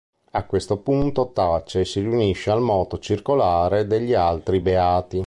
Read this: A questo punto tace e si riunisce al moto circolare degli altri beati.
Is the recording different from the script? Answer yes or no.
no